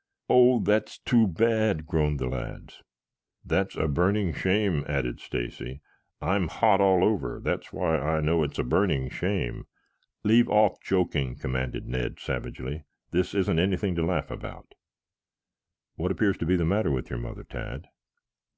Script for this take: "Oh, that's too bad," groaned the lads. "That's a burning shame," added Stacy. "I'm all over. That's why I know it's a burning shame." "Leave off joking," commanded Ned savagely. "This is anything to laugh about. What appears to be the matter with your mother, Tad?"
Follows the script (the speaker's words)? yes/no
no